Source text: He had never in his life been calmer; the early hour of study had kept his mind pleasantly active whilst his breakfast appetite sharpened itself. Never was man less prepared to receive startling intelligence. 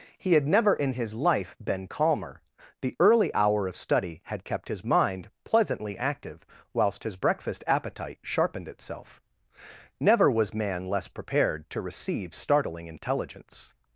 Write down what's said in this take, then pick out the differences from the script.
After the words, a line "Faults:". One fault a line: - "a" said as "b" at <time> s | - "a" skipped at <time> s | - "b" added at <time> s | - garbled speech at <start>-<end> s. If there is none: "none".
He had never in his life been calmer; the early hour of study had kept his mind pleasantly active whilst his breakfast appetite sharpened itself. Never was man less prepared to receive startling intelligence.
Faults:
none